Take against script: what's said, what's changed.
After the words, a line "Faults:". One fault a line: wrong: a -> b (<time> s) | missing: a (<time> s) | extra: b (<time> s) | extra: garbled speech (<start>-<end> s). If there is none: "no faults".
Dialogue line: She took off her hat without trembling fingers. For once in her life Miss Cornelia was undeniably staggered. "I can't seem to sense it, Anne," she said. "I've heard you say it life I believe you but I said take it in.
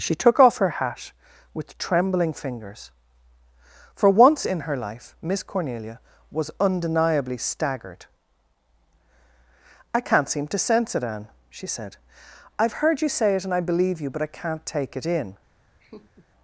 She took off her hat with trembling fingers. For once in her life Miss Cornelia was undeniably staggered. "I can't seem to sense it, Anne," she said. "I've heard you say it and I believe you but I can't take it in.
Faults:
wrong: without -> with (1.5 s)
wrong: life -> and (13.4 s)
wrong: said -> can't (14.3 s)